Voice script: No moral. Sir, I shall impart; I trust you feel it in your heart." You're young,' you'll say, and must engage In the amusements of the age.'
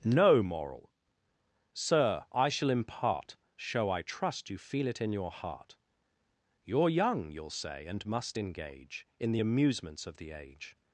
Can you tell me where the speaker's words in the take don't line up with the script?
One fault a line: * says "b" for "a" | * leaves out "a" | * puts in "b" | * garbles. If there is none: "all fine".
* puts in "show"